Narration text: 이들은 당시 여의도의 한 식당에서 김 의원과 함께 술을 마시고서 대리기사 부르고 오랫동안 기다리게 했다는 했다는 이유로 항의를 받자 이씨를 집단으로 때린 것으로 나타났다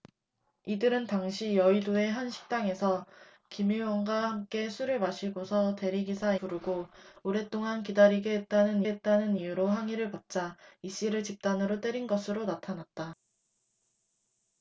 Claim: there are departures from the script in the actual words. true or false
false